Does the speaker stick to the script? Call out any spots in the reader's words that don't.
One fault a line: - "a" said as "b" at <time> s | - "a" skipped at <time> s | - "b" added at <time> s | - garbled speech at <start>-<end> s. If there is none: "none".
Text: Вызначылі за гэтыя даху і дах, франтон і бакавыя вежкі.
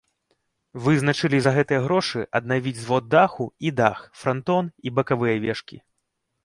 - "грошы аднавіць звод" added at 1.9 s